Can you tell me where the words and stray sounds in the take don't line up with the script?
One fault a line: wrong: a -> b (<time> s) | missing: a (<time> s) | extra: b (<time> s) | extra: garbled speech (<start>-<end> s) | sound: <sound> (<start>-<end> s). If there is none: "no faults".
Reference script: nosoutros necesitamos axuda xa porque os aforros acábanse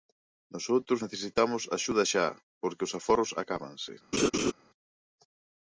sound: laugh (4.1-4.5 s)